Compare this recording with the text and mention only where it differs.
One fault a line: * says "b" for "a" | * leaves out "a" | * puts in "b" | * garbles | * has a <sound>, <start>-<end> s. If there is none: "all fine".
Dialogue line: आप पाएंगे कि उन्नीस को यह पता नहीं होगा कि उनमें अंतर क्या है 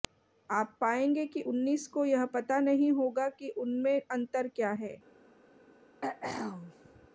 * has a throat clearing, 6.0-7.1 s